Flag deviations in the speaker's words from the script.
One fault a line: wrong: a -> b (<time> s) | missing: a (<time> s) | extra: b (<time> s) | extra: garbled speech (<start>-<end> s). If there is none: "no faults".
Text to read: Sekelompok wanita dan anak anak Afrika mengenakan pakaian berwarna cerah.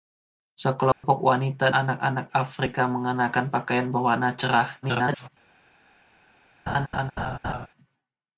missing: dan (1.7 s)
extra: garbled speech (4.8-5.3 s)